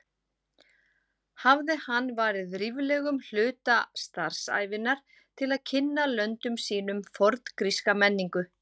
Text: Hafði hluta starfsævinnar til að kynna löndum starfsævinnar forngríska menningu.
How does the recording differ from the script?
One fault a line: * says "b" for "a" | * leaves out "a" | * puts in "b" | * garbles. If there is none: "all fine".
* puts in "hann varið ríflegum"
* says "sínum" for "starfsævinnar"